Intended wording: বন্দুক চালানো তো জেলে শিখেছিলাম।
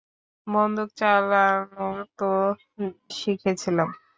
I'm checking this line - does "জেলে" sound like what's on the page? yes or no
no